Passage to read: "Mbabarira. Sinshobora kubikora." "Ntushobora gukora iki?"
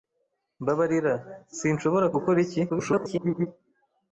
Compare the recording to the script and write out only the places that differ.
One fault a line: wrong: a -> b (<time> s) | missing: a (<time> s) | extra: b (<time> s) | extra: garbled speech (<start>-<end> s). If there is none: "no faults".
missing: kubikora Ntushobora (2.1 s)
extra: garbled speech (2.7-3.5 s)